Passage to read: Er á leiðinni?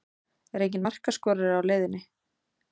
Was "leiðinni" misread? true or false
false